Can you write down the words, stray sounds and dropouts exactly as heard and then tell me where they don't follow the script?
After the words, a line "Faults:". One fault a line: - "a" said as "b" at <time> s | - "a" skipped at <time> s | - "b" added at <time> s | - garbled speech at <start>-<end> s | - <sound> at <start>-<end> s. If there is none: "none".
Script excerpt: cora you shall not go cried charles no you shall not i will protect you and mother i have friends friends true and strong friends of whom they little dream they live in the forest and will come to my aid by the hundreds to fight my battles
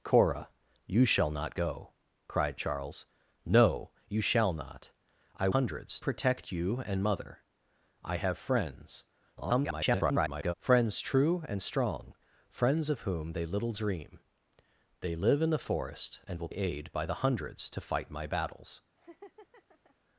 cora you shall not go cried charles no you shall not i hundreds protect you and mother i have friends [garbled] friends true and strong friends of whom they little dream they live in the forest and will aid by the hundreds to fight my battles
Faults:
- "will" said as "hundreds" at 5.5 s
- garbled speech at 9.4-10.5 s
- "come to my" skipped at 16.5 s
- laugh at 19.0-20.0 s